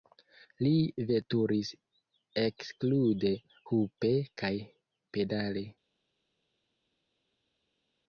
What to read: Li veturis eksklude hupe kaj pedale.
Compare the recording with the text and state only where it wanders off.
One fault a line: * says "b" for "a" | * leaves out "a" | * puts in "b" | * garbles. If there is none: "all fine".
all fine